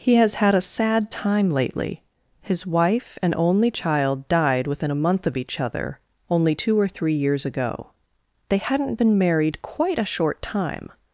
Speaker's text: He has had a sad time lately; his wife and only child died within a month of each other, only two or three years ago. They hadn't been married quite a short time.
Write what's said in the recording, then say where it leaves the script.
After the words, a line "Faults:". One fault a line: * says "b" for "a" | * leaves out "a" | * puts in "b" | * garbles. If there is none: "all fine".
He has had a sad time lately; his wife and only child died within a month of each other, only two or three years ago. They hadn't been married quite a short time.
Faults:
all fine